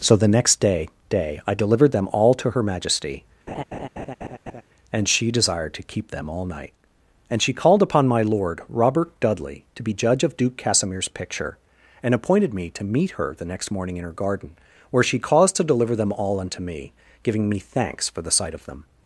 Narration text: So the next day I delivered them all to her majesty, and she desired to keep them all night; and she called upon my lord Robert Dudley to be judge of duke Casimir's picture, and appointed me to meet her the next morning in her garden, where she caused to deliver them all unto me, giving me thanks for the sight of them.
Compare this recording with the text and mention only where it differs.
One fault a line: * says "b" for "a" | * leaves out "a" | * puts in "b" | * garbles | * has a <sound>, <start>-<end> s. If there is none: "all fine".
* puts in "day"
* has a laugh, 3.5-4.6 s